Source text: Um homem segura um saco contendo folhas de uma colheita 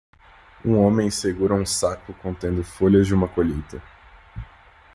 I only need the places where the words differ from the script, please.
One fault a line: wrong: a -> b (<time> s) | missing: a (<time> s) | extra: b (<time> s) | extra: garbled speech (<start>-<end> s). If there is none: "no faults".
no faults